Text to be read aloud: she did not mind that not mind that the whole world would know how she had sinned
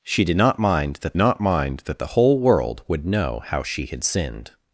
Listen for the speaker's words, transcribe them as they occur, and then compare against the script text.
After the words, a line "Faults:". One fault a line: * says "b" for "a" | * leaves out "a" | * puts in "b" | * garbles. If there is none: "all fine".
she did not mind that not mind that the whole world would know how she had sinned
Faults:
all fine